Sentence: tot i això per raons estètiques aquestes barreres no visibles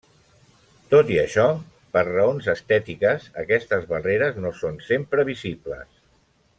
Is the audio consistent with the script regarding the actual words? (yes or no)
no